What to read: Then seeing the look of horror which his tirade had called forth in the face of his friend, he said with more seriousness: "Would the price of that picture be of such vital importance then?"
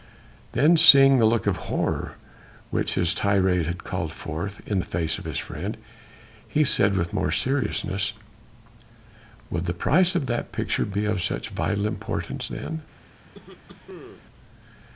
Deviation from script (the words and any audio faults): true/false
true